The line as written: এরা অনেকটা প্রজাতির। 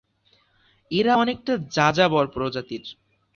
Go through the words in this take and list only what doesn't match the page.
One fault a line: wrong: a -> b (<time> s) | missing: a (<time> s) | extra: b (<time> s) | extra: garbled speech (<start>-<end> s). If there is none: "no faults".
extra: যাযাবর (1.7 s)